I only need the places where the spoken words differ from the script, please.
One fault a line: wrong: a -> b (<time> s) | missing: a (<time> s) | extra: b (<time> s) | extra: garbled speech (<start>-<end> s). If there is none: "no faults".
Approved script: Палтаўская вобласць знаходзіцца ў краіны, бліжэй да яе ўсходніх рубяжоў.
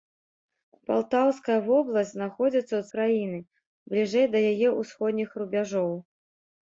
no faults